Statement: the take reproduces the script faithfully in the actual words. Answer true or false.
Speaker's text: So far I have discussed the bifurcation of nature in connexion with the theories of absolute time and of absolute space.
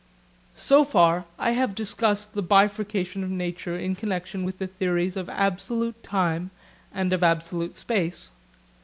true